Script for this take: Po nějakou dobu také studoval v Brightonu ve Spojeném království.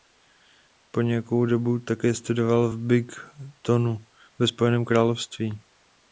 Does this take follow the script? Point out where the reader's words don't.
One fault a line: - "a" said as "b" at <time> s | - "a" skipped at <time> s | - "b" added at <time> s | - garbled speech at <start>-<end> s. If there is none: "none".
none